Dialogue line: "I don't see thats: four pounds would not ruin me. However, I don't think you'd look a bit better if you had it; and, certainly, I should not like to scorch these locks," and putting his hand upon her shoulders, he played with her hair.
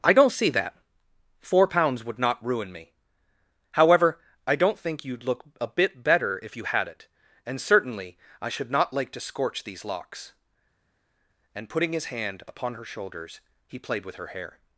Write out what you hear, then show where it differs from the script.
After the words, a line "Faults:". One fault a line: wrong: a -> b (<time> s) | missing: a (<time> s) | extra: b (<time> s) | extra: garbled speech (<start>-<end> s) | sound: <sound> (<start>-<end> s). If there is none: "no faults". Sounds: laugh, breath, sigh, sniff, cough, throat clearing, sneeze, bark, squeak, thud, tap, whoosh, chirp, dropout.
"I don't see that: four pounds would not ruin me. However, I don't think you'd look a bit better if you had it; and, certainly, I should not like to scorch these locks," and putting his hand upon her shoulders, he played with her hair.
Faults:
wrong: thats -> that (0.5 s)